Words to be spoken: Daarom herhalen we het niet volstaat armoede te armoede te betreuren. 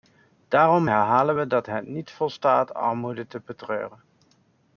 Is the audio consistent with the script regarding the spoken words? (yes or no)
no